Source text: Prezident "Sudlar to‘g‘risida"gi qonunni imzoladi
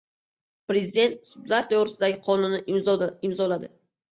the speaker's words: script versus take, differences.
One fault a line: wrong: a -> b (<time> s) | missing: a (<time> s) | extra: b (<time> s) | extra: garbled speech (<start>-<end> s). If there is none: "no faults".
no faults